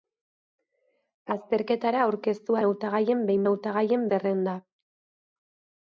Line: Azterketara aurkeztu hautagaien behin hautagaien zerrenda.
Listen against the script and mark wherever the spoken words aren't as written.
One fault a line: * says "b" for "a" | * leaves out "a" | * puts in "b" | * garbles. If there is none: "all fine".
all fine